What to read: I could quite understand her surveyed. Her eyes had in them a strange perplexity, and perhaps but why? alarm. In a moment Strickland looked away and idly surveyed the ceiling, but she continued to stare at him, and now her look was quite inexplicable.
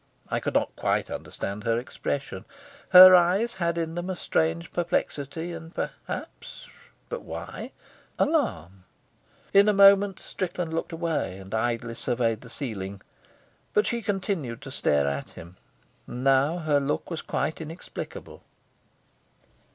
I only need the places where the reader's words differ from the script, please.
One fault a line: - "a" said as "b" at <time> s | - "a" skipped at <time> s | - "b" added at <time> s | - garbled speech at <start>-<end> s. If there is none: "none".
- "not" added at 0.6 s
- "surveyed" said as "expression" at 1.8 s